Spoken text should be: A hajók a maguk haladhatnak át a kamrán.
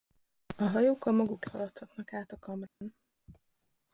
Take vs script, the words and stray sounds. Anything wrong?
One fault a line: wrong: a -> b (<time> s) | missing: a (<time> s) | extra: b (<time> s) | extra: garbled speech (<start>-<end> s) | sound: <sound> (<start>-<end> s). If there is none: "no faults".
sound: dropout (2.7-2.8 s)